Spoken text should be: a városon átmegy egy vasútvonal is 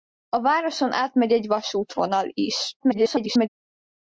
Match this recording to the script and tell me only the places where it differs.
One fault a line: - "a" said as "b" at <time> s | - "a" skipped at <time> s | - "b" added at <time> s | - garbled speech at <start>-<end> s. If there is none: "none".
- garbled speech at 2.8-3.5 s